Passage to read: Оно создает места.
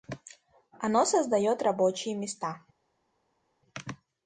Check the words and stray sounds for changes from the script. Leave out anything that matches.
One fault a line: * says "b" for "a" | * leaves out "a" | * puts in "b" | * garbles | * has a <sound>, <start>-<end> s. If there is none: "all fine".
* puts in "рабочие"